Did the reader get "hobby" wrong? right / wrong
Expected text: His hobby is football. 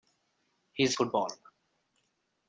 wrong